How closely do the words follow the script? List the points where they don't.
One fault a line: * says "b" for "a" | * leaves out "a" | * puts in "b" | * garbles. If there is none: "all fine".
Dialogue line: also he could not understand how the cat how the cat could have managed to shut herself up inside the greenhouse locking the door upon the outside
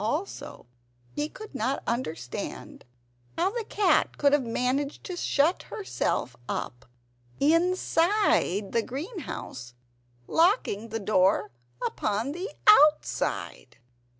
* leaves out "how the cat"